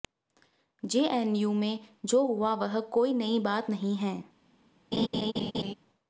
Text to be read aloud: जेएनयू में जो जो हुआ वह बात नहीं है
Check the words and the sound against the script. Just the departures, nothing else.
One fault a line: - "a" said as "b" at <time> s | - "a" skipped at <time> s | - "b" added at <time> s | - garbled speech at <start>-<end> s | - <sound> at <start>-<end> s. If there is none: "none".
- "जो" skipped at 2.2 s
- "कोई नई" added at 2.8 s
- laugh at 4.9-5.7 s